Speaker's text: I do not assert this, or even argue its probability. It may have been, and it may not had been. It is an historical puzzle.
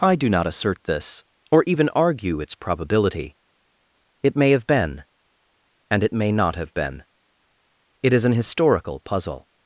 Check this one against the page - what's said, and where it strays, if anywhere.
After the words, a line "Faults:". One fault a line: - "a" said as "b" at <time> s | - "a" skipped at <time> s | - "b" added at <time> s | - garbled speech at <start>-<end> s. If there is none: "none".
I do not assert this, or even argue its probability. It may have been, and it may not have been. It is an historical puzzle.
Faults:
- "had" said as "have" at 6.5 s